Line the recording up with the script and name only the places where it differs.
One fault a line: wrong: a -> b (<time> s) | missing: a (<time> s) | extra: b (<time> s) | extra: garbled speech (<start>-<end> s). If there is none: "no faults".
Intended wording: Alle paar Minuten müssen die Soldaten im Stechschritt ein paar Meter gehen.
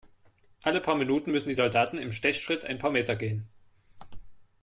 no faults